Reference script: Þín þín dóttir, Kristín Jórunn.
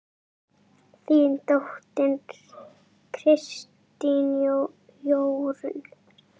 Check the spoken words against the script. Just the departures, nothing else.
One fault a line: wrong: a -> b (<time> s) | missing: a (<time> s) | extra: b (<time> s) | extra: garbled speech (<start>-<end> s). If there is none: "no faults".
missing: þín (1.4 s)